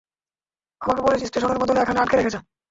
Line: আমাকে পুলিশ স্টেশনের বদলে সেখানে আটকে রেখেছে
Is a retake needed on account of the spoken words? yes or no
yes